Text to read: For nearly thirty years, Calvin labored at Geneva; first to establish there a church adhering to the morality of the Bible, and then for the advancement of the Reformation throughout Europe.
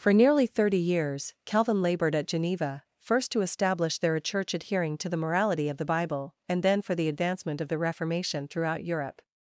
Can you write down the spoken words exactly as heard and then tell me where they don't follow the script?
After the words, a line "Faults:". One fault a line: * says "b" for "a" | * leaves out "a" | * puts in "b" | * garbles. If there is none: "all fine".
For nearly thirty years, Calvin labored at Geneva; first to establish there a church adhering to the morality of the Bible, and then for the advancement of the Reformation throughout Europe.
Faults:
all fine